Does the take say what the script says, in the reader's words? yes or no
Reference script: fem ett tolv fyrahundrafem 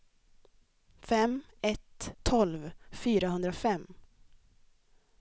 yes